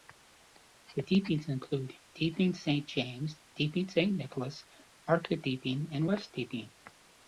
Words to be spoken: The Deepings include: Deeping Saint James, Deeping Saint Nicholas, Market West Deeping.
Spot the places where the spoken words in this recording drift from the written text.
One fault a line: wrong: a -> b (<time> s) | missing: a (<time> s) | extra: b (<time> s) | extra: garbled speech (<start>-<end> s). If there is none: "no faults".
extra: Deeping and (5.4 s)